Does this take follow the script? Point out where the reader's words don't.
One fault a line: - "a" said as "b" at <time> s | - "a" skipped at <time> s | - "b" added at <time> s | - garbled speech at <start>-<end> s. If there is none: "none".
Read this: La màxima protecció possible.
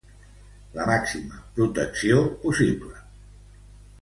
none